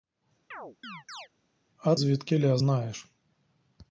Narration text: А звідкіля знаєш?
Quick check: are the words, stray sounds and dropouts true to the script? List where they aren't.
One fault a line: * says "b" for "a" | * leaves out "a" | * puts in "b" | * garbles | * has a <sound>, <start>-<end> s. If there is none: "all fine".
* has a chirp, 0.5-1.3 s